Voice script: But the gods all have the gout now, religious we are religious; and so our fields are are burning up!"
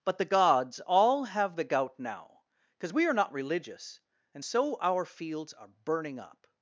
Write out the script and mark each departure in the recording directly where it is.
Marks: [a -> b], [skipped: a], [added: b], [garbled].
But the gods all have the gout now, [religious -> because] we are [added: not] religious; and so our fields are [skipped: are] burning up!"